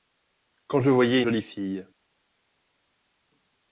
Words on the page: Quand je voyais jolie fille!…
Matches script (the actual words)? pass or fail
pass